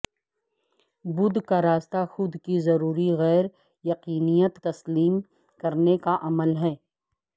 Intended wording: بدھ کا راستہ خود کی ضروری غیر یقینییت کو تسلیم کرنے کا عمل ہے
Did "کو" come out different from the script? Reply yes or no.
yes